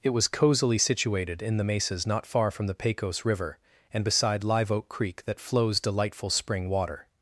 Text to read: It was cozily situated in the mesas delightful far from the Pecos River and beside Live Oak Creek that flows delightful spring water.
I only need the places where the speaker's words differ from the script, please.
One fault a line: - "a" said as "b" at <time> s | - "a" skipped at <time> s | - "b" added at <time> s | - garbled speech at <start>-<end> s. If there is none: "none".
- "delightful" said as "not" at 2.1 s